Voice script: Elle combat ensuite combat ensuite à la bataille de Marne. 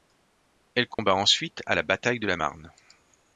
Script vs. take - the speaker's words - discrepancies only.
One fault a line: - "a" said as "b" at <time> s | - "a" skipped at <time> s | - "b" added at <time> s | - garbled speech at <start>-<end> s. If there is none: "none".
- "combat ensuite" skipped at 1.6 s
- "la" added at 2.3 s